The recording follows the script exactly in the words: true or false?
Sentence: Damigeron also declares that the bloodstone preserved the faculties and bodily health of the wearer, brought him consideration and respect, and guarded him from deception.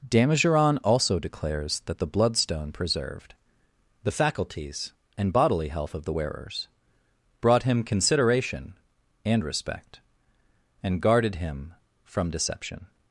false